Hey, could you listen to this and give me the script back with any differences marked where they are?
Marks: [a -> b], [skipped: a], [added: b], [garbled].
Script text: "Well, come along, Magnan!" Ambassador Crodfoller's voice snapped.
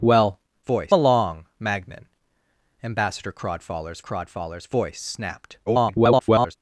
"Well, [come -> voice] along, Magnan!" Ambassador Crodfoller's [added: Crodfoller's] voice snapped. [garbled]